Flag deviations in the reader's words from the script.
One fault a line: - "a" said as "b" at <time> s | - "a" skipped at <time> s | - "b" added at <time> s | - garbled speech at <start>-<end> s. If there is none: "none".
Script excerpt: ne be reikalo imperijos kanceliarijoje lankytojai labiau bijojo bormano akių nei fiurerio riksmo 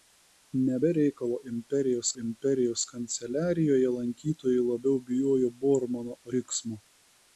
- "imperijos" added at 2.2 s
- "akių nei fiurerio" skipped at 6.1 s